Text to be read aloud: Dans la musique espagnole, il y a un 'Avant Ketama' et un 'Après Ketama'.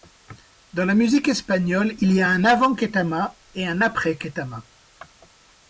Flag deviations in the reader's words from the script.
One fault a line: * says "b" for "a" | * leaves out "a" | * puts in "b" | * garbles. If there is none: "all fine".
all fine